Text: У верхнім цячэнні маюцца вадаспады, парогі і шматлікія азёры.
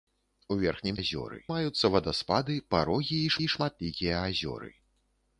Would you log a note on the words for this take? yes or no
yes